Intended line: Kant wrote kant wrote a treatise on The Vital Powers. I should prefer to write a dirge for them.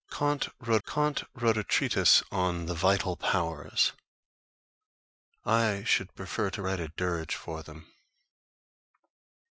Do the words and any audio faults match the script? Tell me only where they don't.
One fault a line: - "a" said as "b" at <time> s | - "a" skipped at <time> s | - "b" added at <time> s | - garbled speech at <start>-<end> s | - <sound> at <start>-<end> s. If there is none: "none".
none